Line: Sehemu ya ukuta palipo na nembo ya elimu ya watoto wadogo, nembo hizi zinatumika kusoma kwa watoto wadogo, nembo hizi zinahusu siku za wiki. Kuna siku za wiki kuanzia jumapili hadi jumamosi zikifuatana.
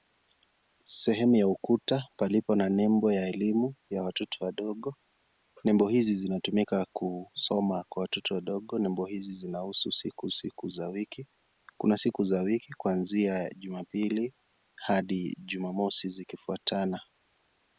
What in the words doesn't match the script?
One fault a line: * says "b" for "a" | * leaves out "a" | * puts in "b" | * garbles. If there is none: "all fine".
* puts in "siku"